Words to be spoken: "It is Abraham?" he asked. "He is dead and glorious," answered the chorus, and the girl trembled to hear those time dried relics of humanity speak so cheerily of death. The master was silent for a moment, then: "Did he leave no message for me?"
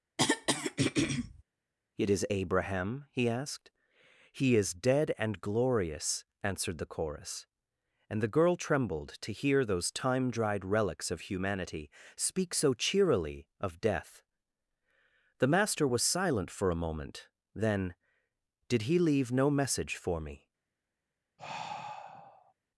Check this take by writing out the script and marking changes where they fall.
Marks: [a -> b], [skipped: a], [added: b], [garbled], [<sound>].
[throat clearing] "It is Abraham?" he asked. "He is dead and glorious," answered the chorus, and the girl trembled to hear those time dried relics of humanity speak so cheerily of death. The master was silent for a moment, then: "Did he leave no message for me?" [sigh]